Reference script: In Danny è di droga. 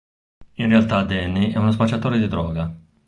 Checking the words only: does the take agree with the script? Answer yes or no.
no